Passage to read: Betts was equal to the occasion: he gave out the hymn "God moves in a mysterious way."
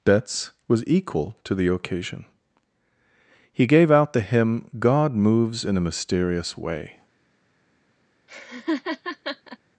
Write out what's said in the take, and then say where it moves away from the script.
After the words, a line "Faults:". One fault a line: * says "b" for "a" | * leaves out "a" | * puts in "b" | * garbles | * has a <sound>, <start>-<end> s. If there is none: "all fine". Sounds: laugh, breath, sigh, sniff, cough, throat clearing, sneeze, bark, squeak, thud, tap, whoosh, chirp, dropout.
Betts was equal to the occasion: he gave out the hymn "God moves in a mysterious way."
Faults:
* has a laugh, 8.3-9.6 s